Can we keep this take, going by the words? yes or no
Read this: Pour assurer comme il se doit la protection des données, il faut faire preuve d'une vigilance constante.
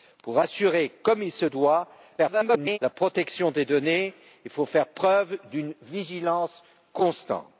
no